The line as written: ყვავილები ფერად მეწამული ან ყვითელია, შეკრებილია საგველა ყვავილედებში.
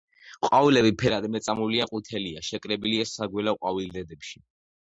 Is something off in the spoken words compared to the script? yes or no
no